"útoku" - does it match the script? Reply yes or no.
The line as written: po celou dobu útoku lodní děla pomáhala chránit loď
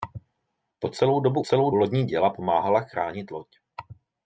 no